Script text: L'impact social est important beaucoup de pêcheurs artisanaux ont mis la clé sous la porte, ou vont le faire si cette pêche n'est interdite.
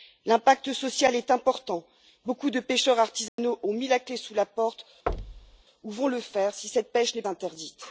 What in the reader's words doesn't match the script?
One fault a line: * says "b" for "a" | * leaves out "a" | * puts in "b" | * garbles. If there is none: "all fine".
all fine